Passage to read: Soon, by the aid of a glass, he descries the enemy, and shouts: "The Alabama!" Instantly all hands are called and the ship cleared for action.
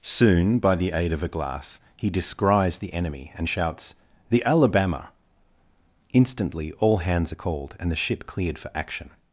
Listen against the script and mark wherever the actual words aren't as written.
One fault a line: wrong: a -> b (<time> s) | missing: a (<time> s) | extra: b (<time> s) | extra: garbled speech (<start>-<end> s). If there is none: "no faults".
no faults